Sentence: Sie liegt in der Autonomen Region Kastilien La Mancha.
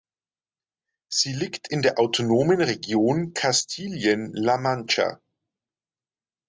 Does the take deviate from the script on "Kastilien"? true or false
false